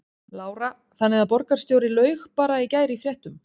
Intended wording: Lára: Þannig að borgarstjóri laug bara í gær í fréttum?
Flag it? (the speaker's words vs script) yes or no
no